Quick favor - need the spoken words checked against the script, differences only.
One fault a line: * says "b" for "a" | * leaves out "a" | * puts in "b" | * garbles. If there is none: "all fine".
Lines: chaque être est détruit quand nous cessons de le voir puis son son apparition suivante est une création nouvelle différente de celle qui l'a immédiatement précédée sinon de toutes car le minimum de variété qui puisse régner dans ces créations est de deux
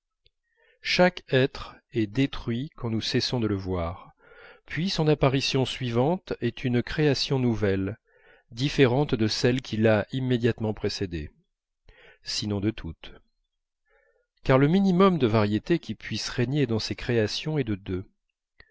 * leaves out "son"